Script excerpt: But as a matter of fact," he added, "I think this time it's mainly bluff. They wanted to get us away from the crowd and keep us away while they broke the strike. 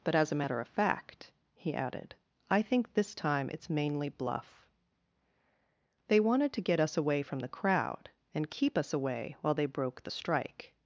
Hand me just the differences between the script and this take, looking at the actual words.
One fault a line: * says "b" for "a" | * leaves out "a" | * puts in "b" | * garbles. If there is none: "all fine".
all fine